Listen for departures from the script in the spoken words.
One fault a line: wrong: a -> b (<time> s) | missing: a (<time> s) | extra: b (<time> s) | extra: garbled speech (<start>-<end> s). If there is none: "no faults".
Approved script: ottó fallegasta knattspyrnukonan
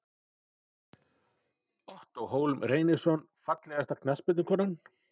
extra: hólm reynisson (2.2 s)